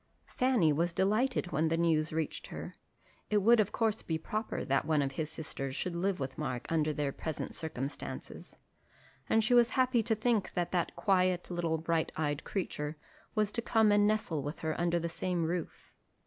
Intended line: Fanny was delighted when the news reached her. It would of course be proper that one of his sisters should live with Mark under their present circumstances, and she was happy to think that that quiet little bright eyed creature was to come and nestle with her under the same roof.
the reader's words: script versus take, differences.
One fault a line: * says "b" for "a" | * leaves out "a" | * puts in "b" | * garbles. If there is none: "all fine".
all fine